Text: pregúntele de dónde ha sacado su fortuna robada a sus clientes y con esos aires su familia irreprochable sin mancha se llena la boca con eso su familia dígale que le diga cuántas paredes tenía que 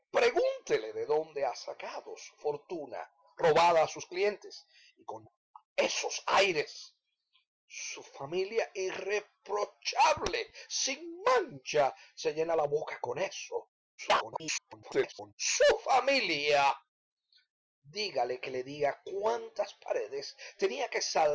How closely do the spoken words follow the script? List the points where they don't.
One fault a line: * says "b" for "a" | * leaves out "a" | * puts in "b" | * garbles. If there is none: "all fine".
* garbles